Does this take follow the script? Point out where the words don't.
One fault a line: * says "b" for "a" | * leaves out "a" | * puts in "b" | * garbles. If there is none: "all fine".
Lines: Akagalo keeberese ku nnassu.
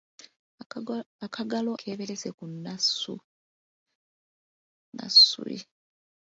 all fine